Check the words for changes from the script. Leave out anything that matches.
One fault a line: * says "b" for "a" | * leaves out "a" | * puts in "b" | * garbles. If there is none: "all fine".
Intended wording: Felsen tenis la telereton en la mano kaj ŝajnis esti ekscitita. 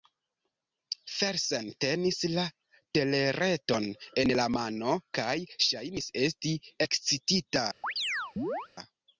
all fine